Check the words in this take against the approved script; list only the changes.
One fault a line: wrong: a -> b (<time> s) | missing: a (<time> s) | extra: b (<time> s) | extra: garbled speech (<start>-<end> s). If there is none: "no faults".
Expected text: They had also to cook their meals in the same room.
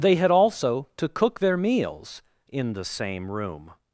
no faults